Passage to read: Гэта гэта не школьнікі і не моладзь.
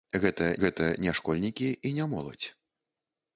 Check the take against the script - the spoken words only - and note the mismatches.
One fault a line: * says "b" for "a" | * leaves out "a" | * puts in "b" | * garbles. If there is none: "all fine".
all fine